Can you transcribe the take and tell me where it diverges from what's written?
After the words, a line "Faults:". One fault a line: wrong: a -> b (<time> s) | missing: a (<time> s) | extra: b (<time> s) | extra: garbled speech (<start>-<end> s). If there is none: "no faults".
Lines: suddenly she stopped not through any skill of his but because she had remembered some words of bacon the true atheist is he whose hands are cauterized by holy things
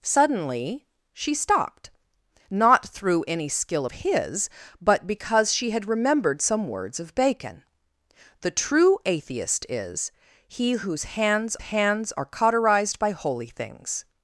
suddenly she stopped not through any skill of his but because she had remembered some words of bacon the true atheist is he whose hands hands are cauterized by holy things
Faults:
extra: hands (11.6 s)